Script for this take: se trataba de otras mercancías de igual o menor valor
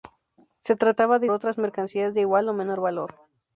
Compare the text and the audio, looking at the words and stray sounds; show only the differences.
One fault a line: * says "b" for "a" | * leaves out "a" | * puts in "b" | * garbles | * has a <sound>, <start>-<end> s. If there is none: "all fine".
all fine